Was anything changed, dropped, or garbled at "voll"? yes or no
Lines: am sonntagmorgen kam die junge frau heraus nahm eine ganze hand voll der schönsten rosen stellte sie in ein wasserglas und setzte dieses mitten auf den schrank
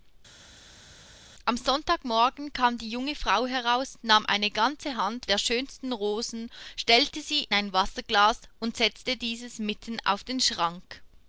yes